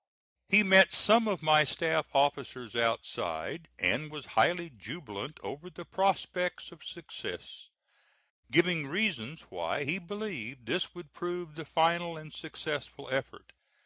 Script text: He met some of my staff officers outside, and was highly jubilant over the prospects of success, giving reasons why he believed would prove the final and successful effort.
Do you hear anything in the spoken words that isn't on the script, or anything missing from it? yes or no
yes